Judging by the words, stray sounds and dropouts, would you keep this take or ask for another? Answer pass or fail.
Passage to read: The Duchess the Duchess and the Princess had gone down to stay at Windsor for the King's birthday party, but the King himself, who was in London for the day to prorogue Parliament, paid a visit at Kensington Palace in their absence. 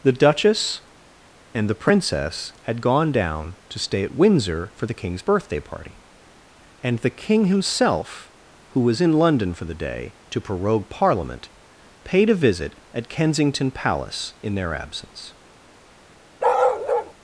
fail